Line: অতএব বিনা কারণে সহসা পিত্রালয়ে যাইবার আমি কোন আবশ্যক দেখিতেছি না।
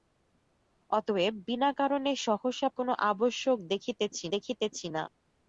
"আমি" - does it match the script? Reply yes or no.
no